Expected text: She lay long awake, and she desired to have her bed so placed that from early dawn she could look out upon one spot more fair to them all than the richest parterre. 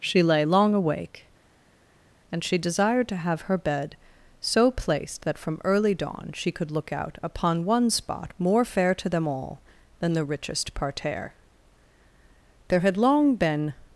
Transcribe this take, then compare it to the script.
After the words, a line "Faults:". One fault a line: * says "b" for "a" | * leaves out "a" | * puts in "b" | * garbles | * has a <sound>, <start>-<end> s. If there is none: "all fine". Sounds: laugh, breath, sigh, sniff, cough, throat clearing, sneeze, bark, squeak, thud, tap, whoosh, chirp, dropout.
She lay long awake, and she desired to have her bed so placed that from early dawn she could look out upon one spot more fair to them all than the richest parterre. There had long been
Faults:
* puts in "There had long been"